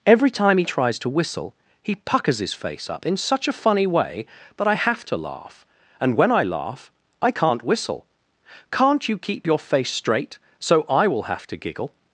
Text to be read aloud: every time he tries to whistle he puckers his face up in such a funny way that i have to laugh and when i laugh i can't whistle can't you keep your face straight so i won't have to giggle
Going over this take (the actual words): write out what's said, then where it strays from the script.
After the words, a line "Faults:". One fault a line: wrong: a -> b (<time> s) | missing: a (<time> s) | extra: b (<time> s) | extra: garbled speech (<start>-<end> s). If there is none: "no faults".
every time he tries to whistle he puckers his face up in such a funny way that i have to laugh and when i laugh i can't whistle can't you keep your face straight so i will have to giggle
Faults:
wrong: won't -> will (11.1 s)